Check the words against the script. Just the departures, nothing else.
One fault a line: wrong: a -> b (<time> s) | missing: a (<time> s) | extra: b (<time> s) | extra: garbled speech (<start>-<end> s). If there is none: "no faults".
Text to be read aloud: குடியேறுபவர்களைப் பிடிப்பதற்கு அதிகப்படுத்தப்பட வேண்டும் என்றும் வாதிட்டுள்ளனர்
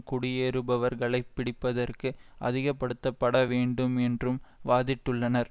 no faults